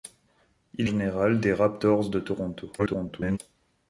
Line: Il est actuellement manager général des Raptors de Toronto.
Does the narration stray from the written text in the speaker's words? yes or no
yes